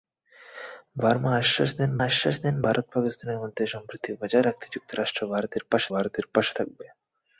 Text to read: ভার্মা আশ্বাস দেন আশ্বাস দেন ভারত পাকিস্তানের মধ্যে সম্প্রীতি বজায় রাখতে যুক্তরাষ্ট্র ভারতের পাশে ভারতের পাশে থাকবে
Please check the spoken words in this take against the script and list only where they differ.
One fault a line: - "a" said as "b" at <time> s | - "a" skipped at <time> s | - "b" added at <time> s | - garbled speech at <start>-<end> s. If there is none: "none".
none